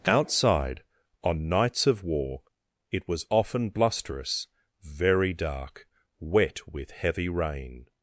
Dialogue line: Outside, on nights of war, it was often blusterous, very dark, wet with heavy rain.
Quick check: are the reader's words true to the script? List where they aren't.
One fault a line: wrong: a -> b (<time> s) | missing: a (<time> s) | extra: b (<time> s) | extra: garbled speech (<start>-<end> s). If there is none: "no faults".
no faults